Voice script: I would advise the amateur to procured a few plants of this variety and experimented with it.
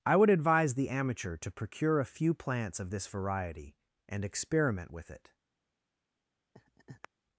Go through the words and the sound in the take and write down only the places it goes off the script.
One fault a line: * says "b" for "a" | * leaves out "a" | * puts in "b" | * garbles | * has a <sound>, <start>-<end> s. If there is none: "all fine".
* says "procure" for "procured"
* says "experiment" for "experimented"
* has a laugh, 6.5-7.1 s